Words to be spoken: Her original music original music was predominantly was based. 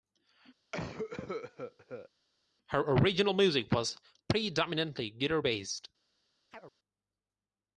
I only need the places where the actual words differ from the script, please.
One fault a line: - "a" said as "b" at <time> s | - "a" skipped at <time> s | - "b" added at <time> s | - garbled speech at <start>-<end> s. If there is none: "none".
- "original music" skipped at 3.7 s
- "was" said as "guitar" at 5.1 s